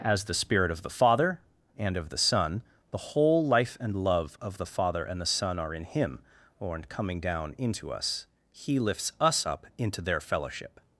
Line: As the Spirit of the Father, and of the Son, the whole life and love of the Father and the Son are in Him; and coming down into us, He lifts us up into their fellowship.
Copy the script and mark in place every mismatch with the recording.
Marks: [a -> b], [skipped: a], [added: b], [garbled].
As the Spirit of the Father, and of the Son, the whole life and love of the Father and the Son are in Him; [and -> or in] coming down into us, He lifts us up into their fellowship.